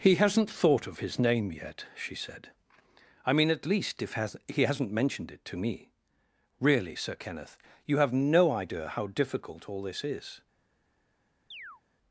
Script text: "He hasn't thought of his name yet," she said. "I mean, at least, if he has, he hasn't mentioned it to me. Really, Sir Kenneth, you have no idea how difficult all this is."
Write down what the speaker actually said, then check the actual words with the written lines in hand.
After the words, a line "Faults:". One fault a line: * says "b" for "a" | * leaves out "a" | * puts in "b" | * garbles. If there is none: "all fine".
"He hasn't thought of his name yet," she said. "I mean, at least, if has, he hasn't mentioned it to me. Really, Sir Kenneth, you have no idea how difficult all this is."
Faults:
* leaves out "he"